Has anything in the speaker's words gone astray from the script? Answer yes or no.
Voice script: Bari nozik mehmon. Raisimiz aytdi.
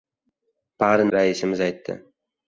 yes